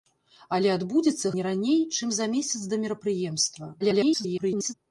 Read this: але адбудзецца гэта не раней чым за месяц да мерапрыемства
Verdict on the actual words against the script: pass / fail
fail